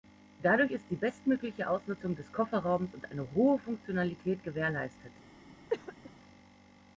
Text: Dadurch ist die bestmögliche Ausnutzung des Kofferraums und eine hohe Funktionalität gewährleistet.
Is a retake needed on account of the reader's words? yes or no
no